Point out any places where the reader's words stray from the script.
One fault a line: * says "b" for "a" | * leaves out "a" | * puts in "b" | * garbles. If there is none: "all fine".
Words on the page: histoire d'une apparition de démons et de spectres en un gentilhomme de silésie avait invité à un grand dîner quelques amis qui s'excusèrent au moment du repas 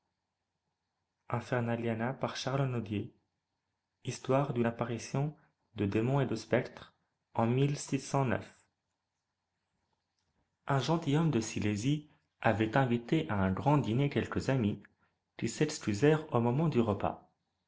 all fine